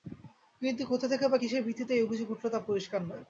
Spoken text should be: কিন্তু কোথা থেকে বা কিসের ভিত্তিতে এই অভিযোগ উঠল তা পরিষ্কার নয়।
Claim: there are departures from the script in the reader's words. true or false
false